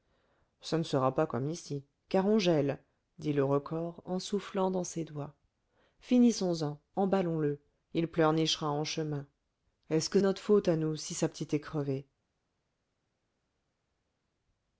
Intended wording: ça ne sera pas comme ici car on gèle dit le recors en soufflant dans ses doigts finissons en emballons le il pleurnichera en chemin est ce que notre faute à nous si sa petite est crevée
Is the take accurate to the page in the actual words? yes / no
yes